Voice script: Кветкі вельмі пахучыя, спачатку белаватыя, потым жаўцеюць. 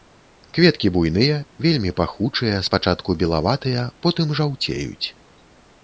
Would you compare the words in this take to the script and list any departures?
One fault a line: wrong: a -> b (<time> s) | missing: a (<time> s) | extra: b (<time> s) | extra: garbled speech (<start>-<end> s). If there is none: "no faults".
extra: буйныя (0.9 s)